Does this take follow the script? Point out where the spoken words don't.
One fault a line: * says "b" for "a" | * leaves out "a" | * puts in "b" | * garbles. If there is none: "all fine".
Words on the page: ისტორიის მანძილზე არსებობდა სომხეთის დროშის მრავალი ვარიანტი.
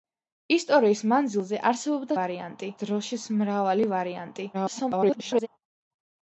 * says "ვარიანტი" for "სომხეთის"
* garbles